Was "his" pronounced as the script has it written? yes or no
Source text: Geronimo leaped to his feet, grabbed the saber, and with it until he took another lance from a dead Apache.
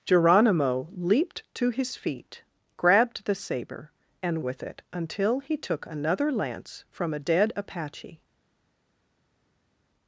yes